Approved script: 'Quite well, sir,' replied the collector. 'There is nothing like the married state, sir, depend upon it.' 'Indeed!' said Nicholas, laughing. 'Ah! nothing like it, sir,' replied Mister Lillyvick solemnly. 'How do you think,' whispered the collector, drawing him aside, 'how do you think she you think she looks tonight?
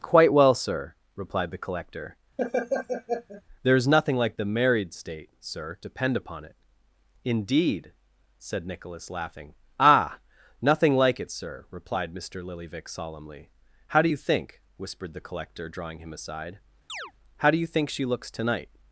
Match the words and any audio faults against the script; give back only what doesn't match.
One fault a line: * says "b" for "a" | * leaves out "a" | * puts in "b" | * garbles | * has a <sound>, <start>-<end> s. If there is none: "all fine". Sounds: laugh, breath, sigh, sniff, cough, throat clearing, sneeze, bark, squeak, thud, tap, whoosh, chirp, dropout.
* has a laugh, 2.4-3.4 s
* has a chirp, 16.9-17.1 s
* leaves out "you think she"